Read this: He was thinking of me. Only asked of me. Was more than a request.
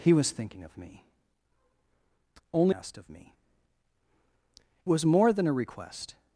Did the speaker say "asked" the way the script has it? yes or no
yes